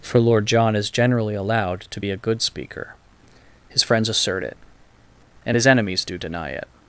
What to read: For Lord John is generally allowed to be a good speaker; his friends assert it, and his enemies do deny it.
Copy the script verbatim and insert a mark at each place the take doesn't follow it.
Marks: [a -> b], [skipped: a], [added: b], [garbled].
For Lord John is generally allowed to be a good speaker; his friends assert it, and his enemies do deny it.